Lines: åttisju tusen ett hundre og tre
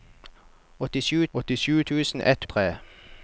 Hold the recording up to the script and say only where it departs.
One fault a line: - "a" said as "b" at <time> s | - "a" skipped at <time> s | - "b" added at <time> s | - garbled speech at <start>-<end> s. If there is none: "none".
- "åttisju" added at 1.3 s
- "hundre" skipped at 2.4 s